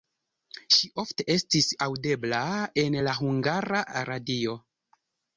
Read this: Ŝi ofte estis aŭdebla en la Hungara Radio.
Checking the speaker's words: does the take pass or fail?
pass